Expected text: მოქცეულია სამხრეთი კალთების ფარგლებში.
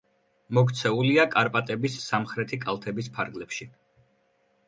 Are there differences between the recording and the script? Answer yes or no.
yes